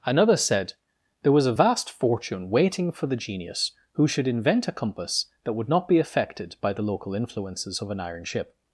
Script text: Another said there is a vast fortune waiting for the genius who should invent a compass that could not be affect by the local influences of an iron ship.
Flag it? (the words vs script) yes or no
yes